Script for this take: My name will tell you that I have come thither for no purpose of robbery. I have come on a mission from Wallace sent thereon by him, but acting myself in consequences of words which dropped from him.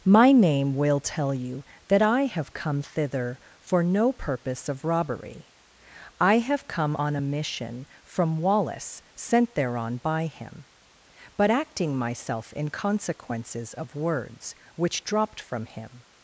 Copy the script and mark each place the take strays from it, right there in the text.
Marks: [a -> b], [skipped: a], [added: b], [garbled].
My name will tell you that I have come thither for no purpose of robbery. I have come on a mission from Wallace sent thereon by him, but acting myself in consequences of words which dropped from him.